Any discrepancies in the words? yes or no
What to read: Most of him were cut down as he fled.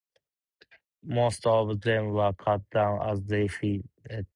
yes